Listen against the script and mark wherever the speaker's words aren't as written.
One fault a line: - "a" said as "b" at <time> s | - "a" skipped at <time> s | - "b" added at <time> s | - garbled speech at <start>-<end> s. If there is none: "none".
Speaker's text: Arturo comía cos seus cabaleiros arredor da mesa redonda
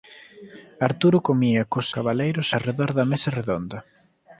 - "seus" skipped at 1.9 s